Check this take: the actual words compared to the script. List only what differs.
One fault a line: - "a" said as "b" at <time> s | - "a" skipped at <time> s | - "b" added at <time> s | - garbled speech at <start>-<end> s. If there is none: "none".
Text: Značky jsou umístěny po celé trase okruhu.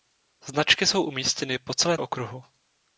- "trase" skipped at 2.0 s